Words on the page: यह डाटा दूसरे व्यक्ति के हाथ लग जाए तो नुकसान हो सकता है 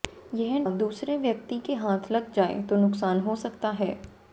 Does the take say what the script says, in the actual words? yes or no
no